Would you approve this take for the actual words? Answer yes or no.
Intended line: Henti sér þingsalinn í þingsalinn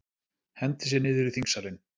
no